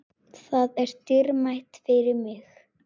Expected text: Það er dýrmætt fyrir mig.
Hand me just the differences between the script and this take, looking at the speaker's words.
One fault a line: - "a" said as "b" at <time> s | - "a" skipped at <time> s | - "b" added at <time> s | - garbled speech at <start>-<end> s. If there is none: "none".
none